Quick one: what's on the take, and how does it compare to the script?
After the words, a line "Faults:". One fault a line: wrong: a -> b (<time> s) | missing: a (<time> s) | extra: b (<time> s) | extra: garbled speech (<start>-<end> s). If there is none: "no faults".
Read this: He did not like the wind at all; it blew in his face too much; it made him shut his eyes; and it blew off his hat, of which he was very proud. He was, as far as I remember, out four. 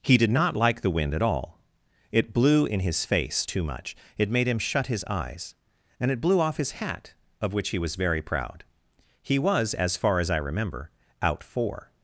He did not like the wind at all; it blew in his face too much; it made him shut his eyes; and it blew off his hat, of which he was very proud. He was, as far as I remember, out four.
Faults:
no faults